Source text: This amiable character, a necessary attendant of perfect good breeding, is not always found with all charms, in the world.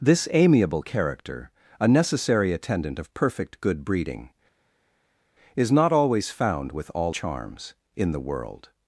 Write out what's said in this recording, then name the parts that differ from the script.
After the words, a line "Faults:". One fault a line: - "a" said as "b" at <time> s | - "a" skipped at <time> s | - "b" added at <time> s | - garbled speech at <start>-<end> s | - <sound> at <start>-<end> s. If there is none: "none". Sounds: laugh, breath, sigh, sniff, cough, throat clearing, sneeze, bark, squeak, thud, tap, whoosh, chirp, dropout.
This amiable character, a necessary attendant of perfect good breeding, is not always found with all charms, in the world.
Faults:
none